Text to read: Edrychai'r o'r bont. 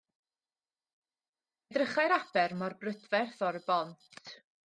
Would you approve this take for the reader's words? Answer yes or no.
no